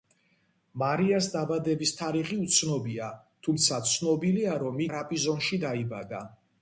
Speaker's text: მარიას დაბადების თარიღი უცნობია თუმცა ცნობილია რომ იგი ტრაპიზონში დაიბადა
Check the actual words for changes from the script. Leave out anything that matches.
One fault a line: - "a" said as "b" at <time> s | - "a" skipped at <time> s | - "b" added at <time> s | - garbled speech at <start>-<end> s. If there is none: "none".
- "იგი" skipped at 4.8 s